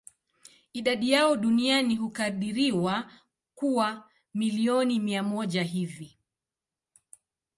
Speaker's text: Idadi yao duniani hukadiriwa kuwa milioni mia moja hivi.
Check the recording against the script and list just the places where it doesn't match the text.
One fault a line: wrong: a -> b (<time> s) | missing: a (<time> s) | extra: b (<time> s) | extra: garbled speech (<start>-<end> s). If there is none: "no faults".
no faults